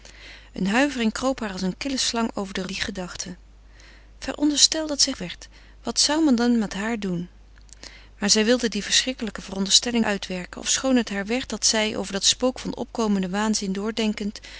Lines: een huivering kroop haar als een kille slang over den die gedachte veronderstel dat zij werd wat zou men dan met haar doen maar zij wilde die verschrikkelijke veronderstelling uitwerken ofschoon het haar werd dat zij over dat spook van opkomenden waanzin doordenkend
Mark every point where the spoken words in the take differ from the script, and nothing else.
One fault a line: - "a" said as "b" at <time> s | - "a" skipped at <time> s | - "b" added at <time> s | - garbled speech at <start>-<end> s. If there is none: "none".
none